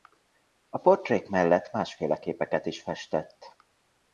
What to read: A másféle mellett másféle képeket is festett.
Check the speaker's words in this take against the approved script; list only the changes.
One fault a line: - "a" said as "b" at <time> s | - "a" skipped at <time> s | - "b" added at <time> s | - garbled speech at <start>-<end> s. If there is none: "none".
- "másféle" said as "portrék" at 0.8 s